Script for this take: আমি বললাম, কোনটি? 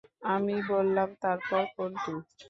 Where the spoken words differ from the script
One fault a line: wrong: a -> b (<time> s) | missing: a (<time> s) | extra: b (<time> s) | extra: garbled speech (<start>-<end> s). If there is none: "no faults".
extra: তারপর (1.2 s)